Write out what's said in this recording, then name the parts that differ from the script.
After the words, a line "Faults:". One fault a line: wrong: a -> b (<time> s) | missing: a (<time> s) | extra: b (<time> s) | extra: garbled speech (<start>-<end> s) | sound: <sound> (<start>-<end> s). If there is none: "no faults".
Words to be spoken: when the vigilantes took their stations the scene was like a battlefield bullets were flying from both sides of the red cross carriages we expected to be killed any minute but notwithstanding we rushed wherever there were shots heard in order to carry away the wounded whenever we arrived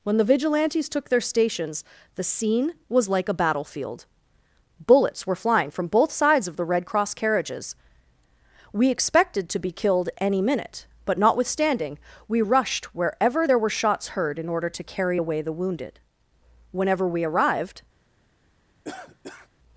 when the vigilantes took their stations the scene was like a battlefield bullets were flying from both sides of the red cross carriages we expected to be killed any minute but notwithstanding we rushed wherever there were shots heard in order to carry away the wounded whenever we arrived
Faults:
sound: cough (18.8-19.5 s)